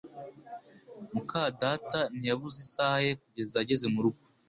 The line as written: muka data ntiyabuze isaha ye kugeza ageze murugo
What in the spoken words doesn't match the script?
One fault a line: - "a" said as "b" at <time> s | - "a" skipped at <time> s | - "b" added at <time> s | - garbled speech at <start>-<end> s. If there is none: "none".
none